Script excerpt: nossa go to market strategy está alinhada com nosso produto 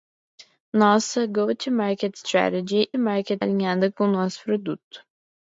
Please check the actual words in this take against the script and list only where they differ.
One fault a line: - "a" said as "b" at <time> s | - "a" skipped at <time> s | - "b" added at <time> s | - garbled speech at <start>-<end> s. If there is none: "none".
- "está" said as "market" at 3.0 s